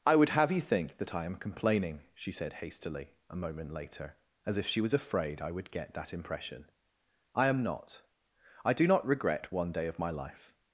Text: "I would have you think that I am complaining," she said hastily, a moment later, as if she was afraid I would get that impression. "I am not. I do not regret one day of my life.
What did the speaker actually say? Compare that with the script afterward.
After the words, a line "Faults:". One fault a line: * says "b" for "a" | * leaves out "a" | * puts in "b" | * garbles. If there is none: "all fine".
"I would have you think that I am complaining," she said hastily, a moment later, as if she was afraid I would get that impression. "I am not. I do not regret one day of my life.
Faults:
all fine